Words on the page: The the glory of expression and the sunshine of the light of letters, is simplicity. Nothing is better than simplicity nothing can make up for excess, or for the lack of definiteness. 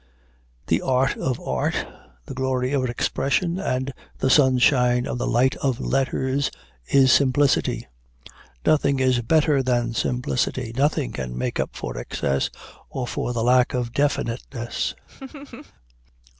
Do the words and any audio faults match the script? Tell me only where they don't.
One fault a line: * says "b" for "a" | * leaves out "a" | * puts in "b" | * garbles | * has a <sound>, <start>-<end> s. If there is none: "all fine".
* puts in "art of art"
* has a laugh, 15.1-15.7 s